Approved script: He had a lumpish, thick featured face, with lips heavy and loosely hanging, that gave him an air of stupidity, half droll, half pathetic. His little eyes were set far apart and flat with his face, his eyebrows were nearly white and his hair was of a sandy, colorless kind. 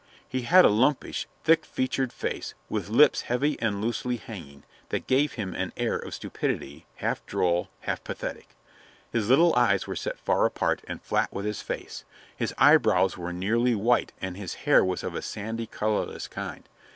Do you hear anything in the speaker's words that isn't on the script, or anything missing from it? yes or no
no